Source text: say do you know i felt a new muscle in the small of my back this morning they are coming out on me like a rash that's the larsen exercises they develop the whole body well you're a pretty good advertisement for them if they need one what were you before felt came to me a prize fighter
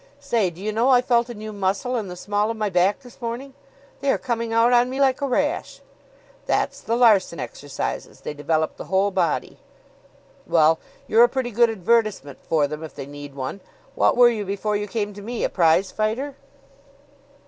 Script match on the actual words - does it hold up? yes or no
no